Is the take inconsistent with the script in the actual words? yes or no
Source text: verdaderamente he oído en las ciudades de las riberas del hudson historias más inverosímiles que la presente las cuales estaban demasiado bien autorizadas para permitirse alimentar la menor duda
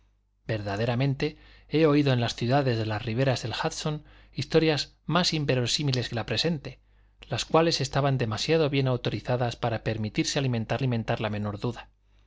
yes